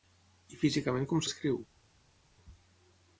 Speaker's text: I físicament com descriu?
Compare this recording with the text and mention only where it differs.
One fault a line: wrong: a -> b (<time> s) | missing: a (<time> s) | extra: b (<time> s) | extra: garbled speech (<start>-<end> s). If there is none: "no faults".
no faults